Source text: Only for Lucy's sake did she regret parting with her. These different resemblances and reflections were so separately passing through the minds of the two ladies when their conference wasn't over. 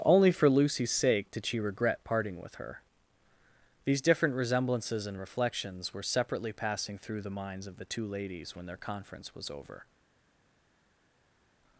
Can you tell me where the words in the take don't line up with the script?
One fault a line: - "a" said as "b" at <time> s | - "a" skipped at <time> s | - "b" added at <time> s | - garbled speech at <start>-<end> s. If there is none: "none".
- "so" skipped at 6.0 s
- "wasn't" said as "was" at 9.3 s